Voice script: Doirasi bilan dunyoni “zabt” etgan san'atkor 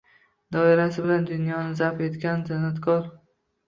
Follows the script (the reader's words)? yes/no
yes